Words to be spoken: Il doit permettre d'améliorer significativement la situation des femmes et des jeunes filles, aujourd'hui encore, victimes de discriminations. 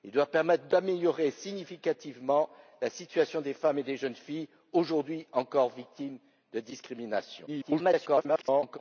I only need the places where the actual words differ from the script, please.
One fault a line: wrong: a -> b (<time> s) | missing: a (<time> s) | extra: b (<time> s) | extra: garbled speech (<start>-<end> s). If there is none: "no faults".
extra: garbled speech (7.5-8.8 s)